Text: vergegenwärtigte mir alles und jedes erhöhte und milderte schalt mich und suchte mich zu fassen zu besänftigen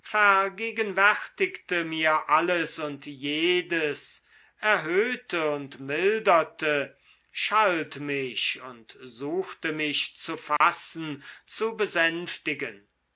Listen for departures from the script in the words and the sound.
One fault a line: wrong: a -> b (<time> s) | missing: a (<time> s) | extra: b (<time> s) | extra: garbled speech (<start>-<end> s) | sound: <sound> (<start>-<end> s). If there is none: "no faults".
sound: dropout (10.6-10.6 s)